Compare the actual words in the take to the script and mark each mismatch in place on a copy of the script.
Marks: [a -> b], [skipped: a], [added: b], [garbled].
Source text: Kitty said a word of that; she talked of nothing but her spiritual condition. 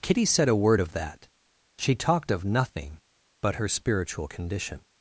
Kitty said a word of that; she talked of nothing but her spiritual condition.